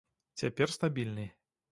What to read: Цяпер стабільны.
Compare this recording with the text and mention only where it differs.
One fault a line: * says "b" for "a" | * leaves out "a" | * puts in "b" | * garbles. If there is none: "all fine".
all fine